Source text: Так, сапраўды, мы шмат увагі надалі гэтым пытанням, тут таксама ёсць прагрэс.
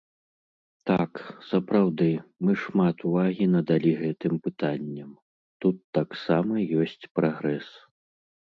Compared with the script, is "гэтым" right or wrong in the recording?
right